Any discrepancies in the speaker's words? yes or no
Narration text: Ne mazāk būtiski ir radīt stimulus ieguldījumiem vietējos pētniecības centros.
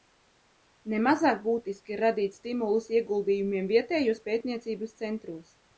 no